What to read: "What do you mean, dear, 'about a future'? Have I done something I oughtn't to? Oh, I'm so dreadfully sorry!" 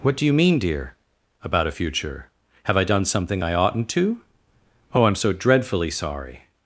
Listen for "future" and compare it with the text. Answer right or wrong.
right